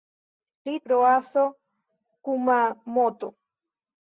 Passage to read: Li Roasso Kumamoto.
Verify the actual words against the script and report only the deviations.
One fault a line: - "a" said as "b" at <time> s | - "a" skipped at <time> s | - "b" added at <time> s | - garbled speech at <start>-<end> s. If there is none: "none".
none